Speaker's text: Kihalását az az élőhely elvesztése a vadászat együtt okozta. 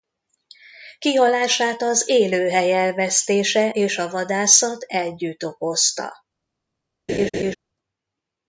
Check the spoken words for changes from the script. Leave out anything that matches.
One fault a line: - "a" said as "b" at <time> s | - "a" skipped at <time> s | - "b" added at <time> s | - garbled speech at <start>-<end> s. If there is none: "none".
- "az" skipped at 2.1 s
- "és" added at 3.7 s